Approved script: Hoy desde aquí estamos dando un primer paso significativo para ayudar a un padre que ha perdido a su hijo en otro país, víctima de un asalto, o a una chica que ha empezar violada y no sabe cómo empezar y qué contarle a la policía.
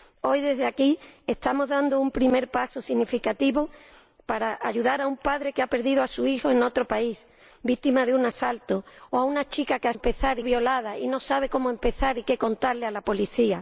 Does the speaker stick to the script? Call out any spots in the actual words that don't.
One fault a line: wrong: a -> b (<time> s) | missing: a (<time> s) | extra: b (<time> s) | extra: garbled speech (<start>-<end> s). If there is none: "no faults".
no faults